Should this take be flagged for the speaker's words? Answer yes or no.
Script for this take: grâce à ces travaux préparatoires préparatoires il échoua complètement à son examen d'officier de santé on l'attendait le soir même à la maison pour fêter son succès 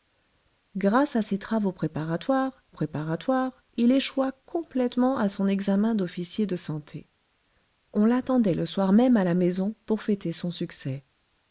no